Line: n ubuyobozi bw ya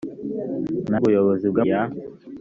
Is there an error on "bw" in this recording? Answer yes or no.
no